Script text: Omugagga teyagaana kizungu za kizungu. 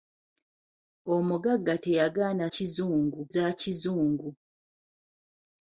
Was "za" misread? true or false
false